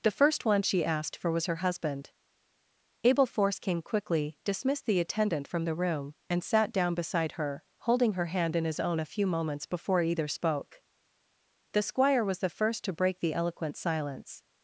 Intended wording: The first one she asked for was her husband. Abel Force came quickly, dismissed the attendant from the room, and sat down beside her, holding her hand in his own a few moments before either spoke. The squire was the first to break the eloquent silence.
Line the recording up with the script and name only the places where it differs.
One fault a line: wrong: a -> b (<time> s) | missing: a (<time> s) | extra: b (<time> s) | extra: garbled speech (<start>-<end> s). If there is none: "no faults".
no faults